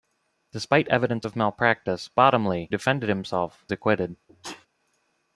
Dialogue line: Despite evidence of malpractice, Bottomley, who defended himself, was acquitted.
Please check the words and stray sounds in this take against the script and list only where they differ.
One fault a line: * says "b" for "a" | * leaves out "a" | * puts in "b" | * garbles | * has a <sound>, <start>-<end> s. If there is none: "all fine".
* leaves out "who"
* leaves out "was"
* has a sneeze, 4.3-4.7 s